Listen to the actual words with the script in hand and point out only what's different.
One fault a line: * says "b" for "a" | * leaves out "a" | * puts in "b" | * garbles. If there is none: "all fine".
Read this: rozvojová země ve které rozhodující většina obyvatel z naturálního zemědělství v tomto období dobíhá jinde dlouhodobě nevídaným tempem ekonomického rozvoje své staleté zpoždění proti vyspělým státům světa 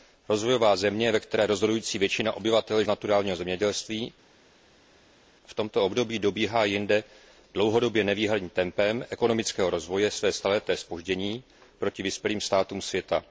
all fine